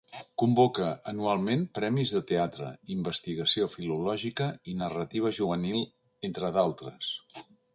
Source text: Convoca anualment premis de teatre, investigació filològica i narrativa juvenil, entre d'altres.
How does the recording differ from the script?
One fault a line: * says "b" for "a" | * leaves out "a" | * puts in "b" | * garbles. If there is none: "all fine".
all fine